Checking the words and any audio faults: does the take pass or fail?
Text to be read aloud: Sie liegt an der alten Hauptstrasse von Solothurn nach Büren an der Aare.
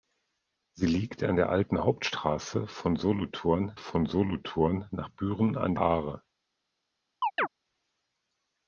fail